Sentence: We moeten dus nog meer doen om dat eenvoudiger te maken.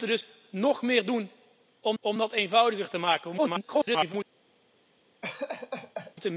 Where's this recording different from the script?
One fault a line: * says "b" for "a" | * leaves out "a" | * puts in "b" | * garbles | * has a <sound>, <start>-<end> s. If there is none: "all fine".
* puts in "om"
* garbles
* has a laugh, 5.2-6.1 s